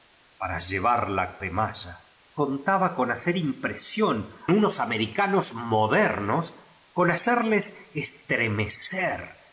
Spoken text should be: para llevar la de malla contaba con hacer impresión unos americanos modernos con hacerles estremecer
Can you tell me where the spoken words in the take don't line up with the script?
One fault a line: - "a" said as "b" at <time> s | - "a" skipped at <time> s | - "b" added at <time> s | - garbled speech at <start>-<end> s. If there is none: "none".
none